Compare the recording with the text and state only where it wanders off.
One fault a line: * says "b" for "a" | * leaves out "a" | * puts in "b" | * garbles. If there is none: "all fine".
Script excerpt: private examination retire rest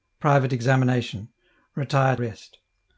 all fine